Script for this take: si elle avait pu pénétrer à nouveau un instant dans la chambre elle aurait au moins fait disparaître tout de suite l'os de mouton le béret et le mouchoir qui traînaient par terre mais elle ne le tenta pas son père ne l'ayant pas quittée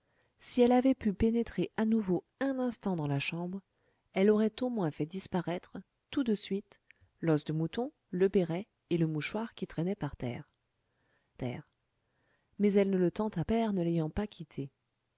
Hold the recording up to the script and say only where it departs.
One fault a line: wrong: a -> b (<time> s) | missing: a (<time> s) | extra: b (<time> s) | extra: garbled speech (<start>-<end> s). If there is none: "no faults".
extra: terre (11.3 s)
missing: pas son (13.4 s)